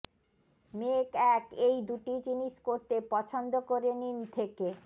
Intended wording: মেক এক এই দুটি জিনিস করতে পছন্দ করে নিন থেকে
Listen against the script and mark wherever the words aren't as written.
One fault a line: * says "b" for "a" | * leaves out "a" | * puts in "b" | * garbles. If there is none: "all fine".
all fine